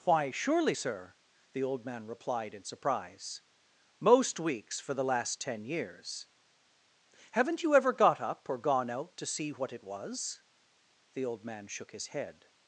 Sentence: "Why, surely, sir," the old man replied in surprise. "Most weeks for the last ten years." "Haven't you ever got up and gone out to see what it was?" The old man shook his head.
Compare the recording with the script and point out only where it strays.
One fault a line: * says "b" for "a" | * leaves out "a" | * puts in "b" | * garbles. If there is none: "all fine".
* says "or" for "and"